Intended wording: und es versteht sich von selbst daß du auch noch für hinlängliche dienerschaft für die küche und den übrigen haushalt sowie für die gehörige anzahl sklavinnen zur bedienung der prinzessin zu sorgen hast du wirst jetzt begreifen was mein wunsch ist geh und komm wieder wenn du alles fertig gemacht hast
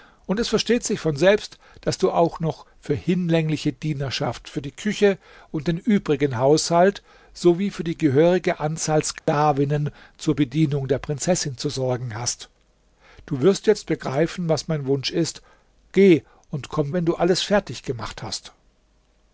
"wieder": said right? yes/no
no